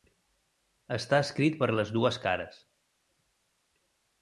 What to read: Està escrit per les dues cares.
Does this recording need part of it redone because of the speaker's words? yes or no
no